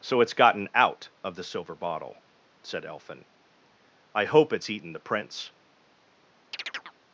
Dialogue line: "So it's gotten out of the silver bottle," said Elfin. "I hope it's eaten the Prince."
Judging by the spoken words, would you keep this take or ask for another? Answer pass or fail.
pass